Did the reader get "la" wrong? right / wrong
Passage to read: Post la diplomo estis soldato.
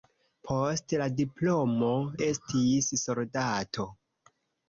right